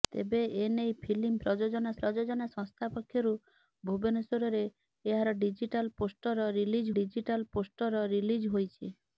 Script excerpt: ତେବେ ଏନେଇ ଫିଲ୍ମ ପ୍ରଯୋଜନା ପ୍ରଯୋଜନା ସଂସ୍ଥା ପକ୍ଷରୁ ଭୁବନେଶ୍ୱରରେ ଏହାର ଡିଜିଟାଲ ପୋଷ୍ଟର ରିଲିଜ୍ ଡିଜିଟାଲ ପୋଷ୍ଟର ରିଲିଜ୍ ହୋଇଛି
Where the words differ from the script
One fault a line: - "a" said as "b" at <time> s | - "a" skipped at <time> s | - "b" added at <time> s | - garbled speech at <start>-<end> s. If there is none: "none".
none